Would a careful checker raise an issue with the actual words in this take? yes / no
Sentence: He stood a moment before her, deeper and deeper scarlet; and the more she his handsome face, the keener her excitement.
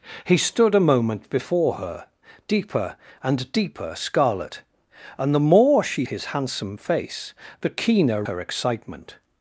no